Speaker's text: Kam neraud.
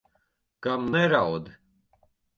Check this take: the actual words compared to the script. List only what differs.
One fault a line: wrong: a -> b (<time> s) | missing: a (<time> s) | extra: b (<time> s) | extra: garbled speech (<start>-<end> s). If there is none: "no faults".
no faults